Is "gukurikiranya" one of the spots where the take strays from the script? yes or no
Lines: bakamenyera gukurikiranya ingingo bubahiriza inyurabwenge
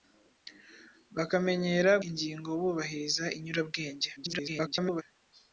yes